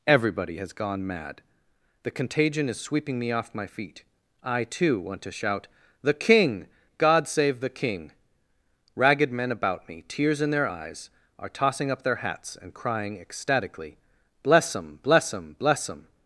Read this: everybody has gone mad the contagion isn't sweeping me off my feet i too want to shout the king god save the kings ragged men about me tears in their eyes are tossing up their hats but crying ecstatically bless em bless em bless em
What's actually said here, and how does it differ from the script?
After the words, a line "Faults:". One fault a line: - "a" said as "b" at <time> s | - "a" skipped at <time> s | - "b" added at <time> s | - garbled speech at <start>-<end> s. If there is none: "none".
everybody has gone mad the contagion is sweeping me off my feet i too want to shout the king god save the king ragged men about me tears in their eyes are tossing up their hats and crying ecstatically bless em bless em bless em
Faults:
- "isn't" said as "is" at 2.7 s
- "kings" said as "king" at 7.7 s
- "but" said as "and" at 12.5 s